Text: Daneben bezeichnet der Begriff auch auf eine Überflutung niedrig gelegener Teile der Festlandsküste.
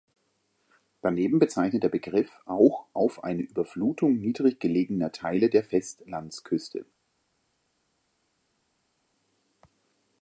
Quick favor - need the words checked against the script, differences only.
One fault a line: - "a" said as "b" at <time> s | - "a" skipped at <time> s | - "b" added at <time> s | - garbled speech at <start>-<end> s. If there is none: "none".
none